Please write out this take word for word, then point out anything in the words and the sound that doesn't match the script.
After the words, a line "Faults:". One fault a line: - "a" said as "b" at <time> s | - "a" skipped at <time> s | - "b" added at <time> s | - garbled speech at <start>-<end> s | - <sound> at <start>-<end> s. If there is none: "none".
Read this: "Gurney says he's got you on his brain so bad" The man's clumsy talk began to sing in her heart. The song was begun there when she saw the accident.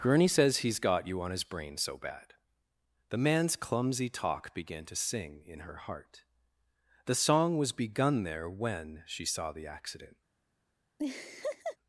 "Gurney says he's got you on his brain so bad" The man's clumsy talk began to sing in her heart. The song was begun there when she saw the accident.
Faults:
- laugh at 11.0-11.8 s